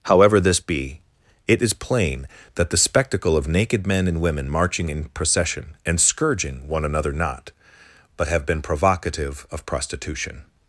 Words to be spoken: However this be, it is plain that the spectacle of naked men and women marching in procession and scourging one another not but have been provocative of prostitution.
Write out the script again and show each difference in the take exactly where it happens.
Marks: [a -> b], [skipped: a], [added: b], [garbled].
However this be, it is plain that the spectacle of naked men and women marching in procession and scourging one another not but have been provocative of prostitution.